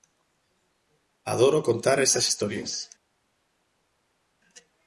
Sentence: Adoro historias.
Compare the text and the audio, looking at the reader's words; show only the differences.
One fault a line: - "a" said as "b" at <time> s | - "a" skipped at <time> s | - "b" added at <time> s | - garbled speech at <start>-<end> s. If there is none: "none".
- "contar esas" added at 1.6 s